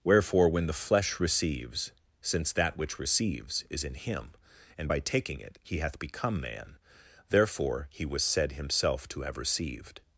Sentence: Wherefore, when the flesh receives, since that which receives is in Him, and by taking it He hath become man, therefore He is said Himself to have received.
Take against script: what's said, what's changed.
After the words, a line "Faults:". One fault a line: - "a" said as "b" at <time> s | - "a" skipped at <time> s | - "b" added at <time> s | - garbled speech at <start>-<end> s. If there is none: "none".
Wherefore, when the flesh receives, since that which receives is in Him, and by taking it He hath become man, therefore He was said Himself to have received.
Faults:
- "is" said as "was" at 8.0 s